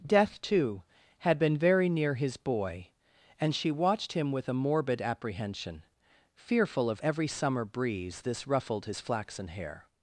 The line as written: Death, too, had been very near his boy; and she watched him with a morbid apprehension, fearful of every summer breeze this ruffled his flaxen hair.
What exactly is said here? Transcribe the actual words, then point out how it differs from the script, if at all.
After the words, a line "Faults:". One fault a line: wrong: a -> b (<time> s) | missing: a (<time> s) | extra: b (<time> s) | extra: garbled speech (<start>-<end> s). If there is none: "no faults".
Death, too, had been very near his boy; and she watched him with a morbid apprehension, fearful of every summer breeze this ruffled his flaxen hair.
Faults:
no faults